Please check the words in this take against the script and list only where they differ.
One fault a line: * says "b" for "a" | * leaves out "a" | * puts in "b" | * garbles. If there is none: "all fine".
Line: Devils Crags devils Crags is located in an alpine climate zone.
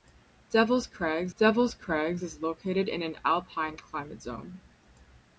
all fine